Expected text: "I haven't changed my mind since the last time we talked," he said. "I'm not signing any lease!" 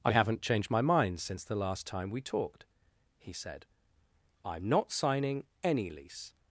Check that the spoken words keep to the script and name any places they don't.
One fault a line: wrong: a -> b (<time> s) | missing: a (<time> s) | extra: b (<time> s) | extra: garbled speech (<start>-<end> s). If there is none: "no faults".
no faults